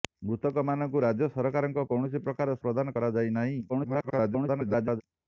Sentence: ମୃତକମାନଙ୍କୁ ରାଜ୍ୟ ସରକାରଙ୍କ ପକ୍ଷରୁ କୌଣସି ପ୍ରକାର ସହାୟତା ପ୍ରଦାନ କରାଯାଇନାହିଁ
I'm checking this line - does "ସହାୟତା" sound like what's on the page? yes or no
no